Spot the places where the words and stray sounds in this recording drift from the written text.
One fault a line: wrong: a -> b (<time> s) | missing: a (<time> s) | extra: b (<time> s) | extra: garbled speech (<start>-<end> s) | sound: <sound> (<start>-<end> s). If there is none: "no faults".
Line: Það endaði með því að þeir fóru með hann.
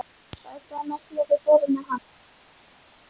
no faults